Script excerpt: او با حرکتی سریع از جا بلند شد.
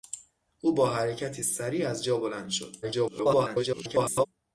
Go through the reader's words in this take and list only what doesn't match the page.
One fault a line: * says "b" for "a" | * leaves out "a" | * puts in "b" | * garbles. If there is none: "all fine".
* garbles